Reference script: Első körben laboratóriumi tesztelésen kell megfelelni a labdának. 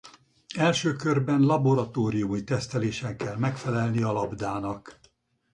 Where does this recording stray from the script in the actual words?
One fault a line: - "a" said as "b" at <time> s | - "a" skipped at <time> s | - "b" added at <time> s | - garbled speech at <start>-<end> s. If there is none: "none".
none